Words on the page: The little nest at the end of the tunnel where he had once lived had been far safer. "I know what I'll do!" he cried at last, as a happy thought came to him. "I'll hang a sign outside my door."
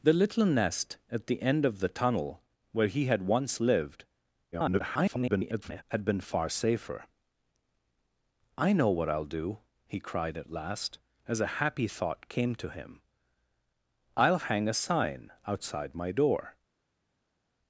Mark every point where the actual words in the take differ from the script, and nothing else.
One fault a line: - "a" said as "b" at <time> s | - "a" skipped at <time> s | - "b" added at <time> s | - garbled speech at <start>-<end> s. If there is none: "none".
- garbled speech at 4.5-5.8 s